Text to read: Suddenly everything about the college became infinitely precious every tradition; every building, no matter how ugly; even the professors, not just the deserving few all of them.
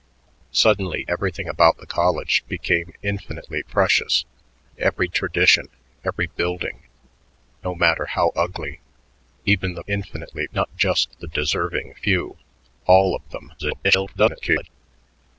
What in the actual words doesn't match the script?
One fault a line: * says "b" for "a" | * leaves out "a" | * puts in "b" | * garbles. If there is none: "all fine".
* says "infinitely" for "professors"
* garbles